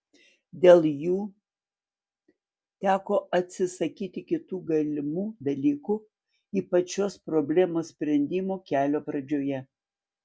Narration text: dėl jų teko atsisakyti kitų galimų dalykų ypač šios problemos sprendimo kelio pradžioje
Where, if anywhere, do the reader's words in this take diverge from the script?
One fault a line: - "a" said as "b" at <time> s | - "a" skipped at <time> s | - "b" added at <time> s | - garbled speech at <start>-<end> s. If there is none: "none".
none